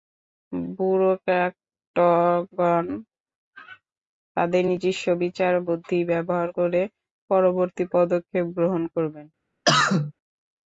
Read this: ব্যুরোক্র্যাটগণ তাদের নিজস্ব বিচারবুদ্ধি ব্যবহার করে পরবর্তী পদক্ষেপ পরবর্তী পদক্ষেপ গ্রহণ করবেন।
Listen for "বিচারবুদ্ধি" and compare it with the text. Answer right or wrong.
right